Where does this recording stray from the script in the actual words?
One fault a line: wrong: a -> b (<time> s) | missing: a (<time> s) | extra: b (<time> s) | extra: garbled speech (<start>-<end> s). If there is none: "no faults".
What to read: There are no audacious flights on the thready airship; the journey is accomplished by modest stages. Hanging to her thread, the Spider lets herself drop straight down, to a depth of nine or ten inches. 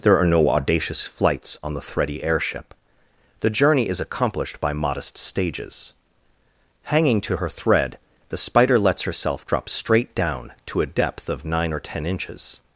no faults